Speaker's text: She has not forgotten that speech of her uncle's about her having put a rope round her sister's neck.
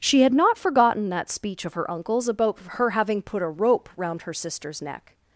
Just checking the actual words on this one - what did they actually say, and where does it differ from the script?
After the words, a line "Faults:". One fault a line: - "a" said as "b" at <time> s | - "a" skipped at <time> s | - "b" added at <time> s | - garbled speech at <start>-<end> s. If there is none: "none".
She had not forgotten that speech of her uncle's about her having put a rope round her sister's neck.
Faults:
- "has" said as "had" at 0.2 s